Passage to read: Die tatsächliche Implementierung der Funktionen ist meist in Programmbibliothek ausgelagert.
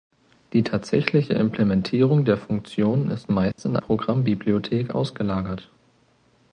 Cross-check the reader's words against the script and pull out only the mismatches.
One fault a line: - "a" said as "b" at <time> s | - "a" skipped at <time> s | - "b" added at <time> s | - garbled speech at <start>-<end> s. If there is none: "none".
none